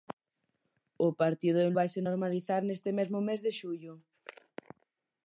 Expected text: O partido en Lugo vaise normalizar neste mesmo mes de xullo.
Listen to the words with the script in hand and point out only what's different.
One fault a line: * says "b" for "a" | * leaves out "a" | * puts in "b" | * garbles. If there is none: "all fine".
* leaves out "Lugo"